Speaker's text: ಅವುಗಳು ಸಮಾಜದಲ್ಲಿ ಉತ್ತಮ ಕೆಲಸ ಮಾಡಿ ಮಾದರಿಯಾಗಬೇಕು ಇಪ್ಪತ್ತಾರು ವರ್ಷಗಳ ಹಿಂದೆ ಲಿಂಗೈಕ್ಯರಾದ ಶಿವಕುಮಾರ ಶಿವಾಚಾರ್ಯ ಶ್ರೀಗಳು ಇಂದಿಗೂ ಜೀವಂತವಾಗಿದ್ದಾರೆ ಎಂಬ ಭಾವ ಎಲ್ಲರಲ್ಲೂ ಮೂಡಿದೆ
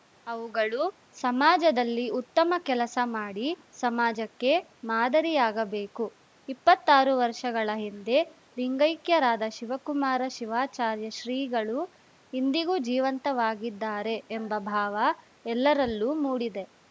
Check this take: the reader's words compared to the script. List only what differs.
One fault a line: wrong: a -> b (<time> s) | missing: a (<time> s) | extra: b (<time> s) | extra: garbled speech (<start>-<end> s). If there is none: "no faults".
extra: ಸಮಾಜಕ್ಕೆ (3.8 s)